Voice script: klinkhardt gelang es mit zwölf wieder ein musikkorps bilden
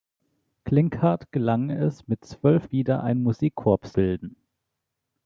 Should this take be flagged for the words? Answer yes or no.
no